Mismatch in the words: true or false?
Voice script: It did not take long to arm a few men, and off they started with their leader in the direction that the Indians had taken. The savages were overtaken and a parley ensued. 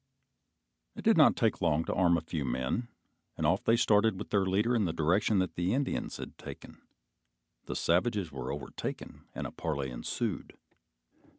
false